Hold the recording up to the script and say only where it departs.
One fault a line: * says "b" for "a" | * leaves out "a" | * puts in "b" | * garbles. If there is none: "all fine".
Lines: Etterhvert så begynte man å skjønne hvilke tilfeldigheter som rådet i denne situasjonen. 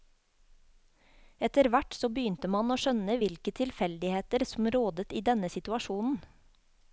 all fine